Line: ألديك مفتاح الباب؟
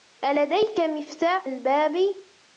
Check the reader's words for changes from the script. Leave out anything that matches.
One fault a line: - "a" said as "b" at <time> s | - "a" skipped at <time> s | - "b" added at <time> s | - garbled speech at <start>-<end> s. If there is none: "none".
none